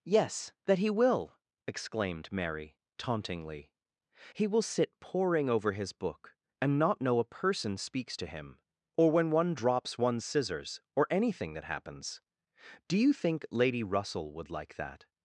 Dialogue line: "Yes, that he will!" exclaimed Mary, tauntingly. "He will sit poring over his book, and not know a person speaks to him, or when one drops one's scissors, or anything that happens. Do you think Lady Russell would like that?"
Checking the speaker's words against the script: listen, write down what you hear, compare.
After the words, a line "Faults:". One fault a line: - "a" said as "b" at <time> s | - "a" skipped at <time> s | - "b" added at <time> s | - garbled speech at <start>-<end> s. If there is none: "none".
"Yes, that he will!" exclaimed Mary, tauntingly. "He will sit poring over his book, and not know a person speaks to him, or when one drops one's scissors, or anything that happens. Do you think Lady Russell would like that?"
Faults:
none